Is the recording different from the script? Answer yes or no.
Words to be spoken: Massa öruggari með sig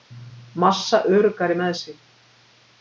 no